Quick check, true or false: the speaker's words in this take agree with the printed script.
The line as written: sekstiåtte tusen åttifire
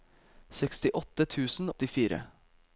true